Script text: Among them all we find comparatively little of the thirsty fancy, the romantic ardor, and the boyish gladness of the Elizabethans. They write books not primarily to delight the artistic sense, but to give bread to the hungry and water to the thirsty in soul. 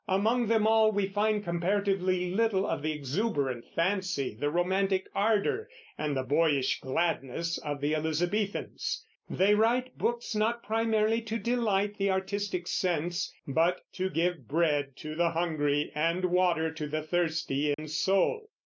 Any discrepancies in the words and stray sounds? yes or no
yes